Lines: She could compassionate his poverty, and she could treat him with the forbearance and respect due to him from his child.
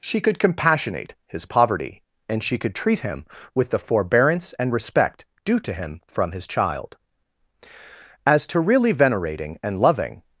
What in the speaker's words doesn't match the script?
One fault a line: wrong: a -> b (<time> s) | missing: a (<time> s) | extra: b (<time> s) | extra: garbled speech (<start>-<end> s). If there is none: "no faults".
extra: As to really venerating and loving (8.2 s)